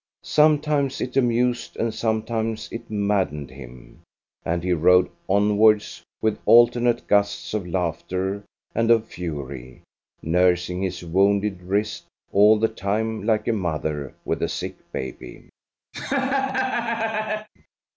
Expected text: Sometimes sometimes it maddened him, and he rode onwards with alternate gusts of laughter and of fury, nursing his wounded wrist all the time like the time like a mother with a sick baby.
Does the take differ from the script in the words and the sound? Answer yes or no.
yes